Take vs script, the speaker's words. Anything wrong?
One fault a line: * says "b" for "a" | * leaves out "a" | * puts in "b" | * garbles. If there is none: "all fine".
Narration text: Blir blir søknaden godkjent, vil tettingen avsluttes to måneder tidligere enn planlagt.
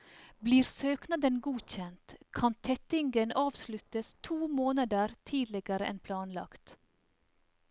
* leaves out "blir"
* says "kan" for "vil"